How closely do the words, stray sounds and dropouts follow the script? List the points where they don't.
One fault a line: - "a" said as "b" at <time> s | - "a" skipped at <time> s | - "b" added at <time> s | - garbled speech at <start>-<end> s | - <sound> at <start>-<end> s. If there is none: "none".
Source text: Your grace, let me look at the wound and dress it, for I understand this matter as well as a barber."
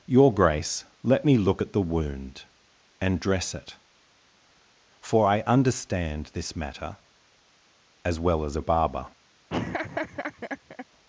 - laugh at 9.5-10.9 s